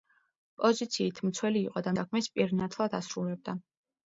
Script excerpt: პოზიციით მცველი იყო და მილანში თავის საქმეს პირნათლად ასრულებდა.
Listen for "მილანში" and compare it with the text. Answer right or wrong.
wrong